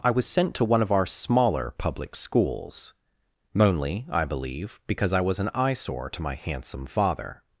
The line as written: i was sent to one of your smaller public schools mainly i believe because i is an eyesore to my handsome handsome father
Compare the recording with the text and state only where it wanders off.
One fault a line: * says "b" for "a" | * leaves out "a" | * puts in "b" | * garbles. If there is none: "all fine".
* says "our" for "your"
* says "was" for "is"
* leaves out "handsome"